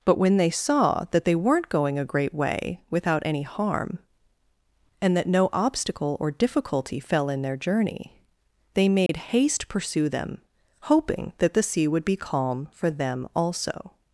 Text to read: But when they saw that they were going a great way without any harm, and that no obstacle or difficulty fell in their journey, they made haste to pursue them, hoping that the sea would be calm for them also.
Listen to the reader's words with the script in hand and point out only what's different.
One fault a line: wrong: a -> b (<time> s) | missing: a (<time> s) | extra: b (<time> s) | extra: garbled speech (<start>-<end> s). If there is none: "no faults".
wrong: were -> weren't (1.4 s)
missing: to (9.7 s)